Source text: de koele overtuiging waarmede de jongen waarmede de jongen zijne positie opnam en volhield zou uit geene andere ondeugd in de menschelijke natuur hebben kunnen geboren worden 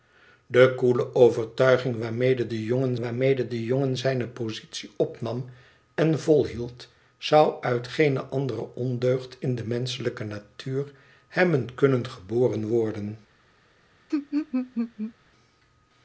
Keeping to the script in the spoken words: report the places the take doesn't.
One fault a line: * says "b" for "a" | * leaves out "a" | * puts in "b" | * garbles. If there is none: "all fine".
all fine